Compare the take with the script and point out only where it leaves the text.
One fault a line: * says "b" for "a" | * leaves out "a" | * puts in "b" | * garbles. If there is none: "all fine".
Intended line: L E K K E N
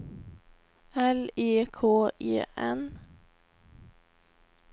* leaves out "K"